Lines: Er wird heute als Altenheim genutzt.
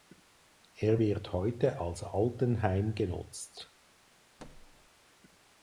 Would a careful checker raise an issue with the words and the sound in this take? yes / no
yes